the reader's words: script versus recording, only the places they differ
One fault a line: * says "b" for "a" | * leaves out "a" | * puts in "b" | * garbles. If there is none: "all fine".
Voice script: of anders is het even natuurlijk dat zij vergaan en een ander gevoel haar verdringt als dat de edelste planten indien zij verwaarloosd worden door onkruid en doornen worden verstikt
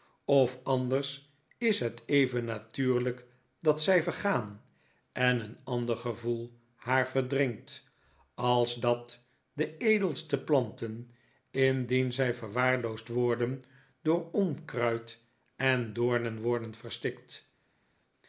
all fine